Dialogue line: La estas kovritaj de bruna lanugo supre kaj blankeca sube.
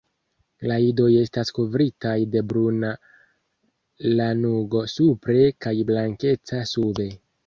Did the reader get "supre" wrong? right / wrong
right